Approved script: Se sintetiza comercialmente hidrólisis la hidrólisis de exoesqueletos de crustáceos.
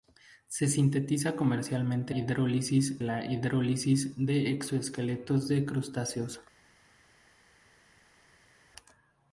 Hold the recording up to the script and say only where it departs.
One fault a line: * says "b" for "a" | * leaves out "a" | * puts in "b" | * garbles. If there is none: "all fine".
all fine